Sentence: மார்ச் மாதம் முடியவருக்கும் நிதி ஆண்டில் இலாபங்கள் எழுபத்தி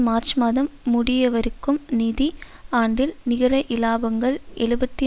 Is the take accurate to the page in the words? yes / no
no